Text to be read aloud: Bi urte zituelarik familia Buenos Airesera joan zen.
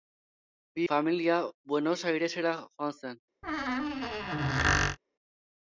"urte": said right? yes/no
no